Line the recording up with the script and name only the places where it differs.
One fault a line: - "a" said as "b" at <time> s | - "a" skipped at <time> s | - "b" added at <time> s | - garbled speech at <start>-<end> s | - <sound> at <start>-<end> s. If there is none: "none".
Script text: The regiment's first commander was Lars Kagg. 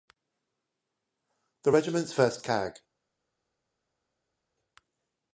- "commander was Lars" skipped at 2.4 s